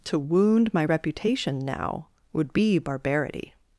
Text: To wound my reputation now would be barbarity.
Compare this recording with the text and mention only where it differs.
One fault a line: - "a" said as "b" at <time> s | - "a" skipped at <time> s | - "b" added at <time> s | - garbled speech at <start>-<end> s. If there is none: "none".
none